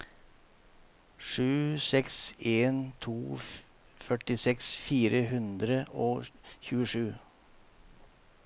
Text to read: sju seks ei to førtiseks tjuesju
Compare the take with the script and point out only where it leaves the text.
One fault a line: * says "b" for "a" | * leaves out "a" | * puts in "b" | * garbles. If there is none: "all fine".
* says "en" for "ei"
* puts in "fire hundre og"